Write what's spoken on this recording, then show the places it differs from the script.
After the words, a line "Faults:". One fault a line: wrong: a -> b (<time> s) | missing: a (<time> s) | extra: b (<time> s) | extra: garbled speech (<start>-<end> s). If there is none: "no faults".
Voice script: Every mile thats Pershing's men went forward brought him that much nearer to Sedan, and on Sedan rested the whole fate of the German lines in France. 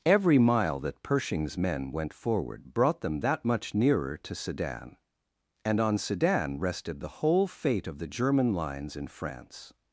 Every mile that Pershing's men went forward brought them that much nearer to Sedan, and on Sedan rested the whole fate of the German lines in France.
Faults:
wrong: thats -> that (0.8 s)
wrong: him -> them (3.0 s)